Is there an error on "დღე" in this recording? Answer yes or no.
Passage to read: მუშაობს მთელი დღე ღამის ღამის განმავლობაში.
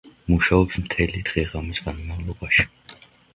no